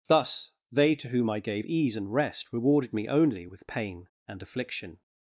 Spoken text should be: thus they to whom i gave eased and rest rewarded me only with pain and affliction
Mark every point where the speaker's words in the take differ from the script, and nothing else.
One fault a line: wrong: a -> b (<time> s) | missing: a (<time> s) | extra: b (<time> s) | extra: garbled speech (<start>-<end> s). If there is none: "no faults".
wrong: eased -> ease (1.6 s)